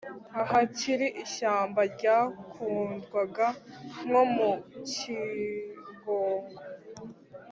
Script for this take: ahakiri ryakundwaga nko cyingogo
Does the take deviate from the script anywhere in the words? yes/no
yes